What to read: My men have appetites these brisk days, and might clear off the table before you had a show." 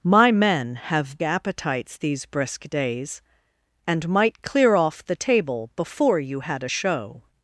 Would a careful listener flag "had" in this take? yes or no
no